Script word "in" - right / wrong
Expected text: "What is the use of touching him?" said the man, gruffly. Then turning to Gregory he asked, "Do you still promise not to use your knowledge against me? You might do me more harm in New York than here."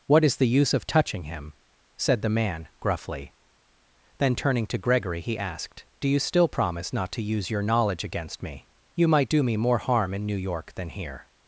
right